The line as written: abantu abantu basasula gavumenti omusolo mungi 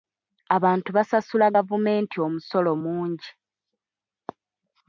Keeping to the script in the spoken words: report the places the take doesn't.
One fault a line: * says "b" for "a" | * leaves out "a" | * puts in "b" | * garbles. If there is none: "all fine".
* leaves out "abantu"